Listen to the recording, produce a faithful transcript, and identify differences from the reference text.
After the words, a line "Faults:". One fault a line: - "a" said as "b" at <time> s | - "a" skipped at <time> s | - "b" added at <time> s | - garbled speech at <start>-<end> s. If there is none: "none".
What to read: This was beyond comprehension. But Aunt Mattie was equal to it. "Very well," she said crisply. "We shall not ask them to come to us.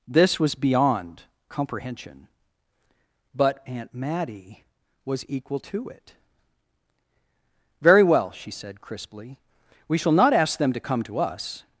This was beyond comprehension. But Aunt Mattie was equal to it. "Very well," she said crisply. "We shall not ask them to come to us.
Faults:
none